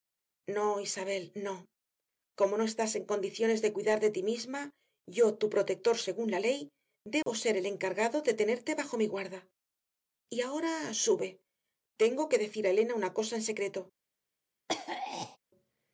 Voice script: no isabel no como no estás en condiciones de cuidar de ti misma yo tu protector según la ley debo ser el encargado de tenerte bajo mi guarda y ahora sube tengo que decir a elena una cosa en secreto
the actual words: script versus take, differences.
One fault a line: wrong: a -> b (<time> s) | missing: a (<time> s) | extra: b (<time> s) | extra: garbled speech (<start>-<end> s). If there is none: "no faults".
no faults